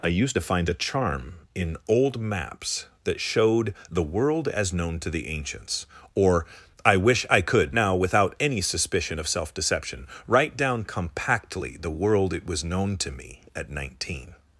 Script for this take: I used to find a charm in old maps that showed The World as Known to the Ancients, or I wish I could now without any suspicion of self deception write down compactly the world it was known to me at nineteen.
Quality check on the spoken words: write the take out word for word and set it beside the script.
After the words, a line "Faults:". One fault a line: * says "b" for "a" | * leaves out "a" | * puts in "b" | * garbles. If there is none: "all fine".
I used to find a charm in old maps that showed The World as Known to the Ancients, or I wish I could now without any suspicion of self deception write down compactly the world it was known to me at nineteen.
Faults:
all fine